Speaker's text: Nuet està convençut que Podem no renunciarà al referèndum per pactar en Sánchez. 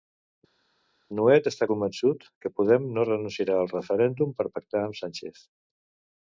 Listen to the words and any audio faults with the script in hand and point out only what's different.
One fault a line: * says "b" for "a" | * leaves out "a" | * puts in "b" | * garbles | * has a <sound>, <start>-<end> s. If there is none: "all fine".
* says "amb" for "en"